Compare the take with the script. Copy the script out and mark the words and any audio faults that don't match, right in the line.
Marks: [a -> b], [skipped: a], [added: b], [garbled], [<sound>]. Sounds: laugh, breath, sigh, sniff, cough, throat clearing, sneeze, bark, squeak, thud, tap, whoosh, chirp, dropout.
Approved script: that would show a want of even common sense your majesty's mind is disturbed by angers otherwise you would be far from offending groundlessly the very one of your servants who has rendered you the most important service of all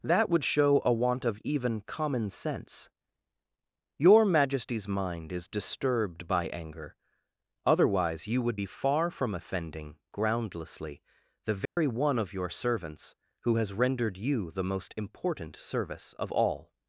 that would show a want of even common sense your majesty's mind is disturbed by [angers -> anger] otherwise you would be far from offending groundlessly the very [dropout] one of your servants who has rendered you the most important service of all